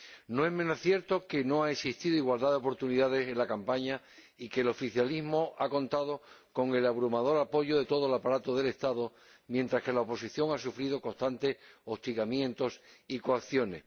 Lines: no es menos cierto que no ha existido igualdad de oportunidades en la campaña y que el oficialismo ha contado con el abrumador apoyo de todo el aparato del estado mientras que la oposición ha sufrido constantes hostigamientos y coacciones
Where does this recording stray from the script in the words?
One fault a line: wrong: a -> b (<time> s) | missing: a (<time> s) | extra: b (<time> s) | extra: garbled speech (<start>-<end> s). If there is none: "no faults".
no faults